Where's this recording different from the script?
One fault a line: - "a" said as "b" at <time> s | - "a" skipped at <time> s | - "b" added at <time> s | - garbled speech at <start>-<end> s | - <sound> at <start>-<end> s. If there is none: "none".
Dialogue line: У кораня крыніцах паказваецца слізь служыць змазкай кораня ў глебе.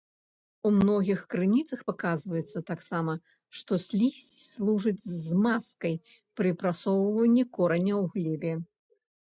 - "кораня" said as "многіх" at 0.8 s
- "таксама што" added at 2.7 s
- "пры прасоўванні" added at 6.4 s